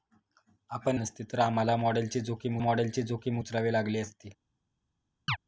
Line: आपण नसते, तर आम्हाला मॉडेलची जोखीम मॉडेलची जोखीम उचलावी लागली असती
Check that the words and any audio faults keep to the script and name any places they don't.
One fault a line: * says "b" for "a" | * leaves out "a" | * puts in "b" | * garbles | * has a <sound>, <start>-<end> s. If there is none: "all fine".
* has a chirp, 5.3-5.4 s